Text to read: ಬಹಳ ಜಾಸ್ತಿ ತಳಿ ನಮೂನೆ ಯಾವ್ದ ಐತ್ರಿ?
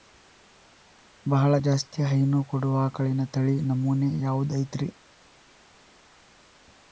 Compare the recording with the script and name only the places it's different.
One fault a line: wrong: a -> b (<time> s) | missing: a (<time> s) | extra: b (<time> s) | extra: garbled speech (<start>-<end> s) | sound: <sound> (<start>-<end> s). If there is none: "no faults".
extra: ಹೈನು ಕೊಡುವ ಆಕಳಿನ (2.0 s)